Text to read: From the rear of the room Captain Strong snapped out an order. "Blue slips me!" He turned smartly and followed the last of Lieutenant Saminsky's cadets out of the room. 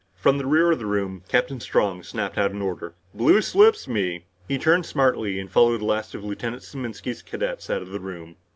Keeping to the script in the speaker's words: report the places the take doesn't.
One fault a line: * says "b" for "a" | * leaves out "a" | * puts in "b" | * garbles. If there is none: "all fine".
all fine